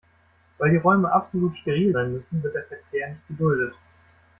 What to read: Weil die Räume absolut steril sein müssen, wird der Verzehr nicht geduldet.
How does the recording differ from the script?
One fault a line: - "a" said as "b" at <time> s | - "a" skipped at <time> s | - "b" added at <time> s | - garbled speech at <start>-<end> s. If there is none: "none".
none